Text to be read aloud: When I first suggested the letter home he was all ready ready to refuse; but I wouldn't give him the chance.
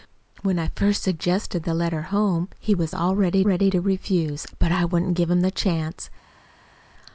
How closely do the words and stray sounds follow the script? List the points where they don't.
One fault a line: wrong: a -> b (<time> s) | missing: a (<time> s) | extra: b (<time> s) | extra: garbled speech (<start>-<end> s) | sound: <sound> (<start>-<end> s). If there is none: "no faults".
no faults